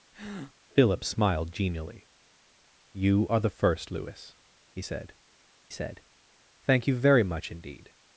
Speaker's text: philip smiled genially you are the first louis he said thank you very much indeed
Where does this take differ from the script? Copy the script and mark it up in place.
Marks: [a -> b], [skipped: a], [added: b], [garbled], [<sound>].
[breath] philip smiled genially you are the first louis he said [added: said] thank you very much indeed